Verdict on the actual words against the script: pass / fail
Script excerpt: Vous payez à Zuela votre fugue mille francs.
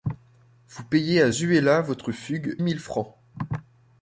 pass